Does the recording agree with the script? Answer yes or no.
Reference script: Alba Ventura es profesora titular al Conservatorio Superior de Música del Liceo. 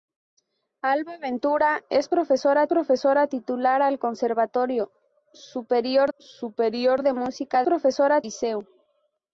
no